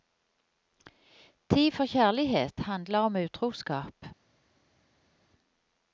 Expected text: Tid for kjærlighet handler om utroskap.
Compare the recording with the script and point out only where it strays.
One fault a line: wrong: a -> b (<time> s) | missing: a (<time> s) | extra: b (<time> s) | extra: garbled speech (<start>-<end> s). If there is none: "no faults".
no faults